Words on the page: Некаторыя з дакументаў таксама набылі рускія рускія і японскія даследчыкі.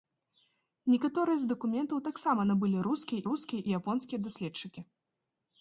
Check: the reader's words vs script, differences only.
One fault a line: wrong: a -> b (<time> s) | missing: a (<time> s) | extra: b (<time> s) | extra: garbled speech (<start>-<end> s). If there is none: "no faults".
no faults